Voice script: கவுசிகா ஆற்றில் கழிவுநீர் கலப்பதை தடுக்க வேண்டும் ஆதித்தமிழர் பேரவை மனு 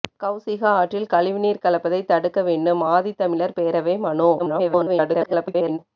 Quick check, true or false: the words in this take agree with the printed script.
false